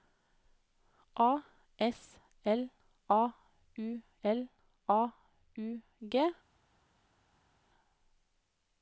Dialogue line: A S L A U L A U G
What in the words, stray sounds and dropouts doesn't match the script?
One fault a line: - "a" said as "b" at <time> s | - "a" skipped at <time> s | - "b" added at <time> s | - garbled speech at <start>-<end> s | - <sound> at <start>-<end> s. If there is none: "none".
none